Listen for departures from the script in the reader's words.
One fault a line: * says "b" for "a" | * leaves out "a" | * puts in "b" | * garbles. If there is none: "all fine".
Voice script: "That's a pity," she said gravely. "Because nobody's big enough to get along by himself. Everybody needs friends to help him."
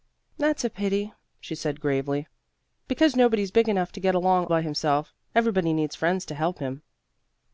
all fine